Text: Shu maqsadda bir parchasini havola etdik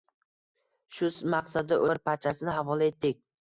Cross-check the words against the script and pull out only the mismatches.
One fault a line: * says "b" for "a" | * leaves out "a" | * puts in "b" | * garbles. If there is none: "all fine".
all fine